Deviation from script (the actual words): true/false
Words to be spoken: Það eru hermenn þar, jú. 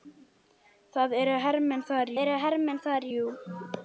true